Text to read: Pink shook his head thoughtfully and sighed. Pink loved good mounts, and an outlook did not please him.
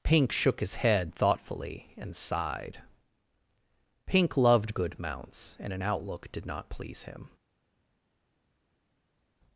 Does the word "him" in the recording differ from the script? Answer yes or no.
no